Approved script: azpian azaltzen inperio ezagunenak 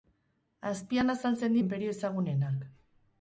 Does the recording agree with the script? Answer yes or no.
yes